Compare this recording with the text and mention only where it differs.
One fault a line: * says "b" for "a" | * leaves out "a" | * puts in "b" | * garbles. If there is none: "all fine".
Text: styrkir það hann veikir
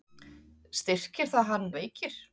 all fine